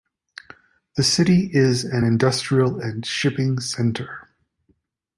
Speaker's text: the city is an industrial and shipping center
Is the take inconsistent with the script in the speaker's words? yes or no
no